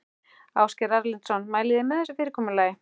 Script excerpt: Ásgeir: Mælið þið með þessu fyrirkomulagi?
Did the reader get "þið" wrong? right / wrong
right